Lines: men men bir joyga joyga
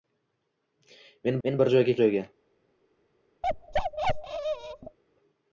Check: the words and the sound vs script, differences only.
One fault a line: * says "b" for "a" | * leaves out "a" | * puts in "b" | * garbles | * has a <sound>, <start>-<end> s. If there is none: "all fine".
* has a bark, 3.4-5.0 s